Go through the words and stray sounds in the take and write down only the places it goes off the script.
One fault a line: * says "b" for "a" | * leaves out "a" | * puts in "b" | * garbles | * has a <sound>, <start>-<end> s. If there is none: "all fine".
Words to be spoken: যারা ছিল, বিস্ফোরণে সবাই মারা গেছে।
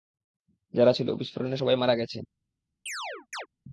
* has a chirp, 2.9-3.5 s